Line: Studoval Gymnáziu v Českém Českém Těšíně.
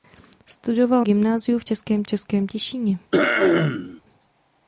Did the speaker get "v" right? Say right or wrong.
right